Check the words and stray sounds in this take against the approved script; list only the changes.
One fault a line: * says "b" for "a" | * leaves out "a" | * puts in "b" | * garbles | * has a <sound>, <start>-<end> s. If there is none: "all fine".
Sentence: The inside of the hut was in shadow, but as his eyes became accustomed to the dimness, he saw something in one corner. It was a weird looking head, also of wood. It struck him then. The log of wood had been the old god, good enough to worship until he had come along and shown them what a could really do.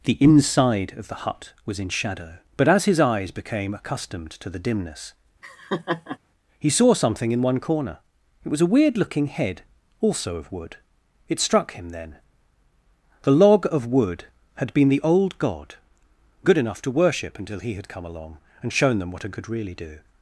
* has a laugh, 5.4-6.2 s